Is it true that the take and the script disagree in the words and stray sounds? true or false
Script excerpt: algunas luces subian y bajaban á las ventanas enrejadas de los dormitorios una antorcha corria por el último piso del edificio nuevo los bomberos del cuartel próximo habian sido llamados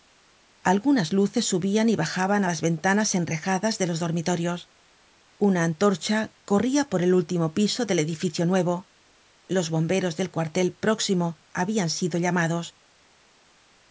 false